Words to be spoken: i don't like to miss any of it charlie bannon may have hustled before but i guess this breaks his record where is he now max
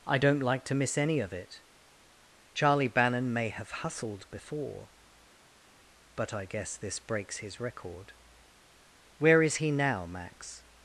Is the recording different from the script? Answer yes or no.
no